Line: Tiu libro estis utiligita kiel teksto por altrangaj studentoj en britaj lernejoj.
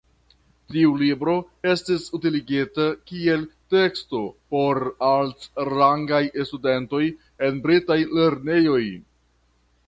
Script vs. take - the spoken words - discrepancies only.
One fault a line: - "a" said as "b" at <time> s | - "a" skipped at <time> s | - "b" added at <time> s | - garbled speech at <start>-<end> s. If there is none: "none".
none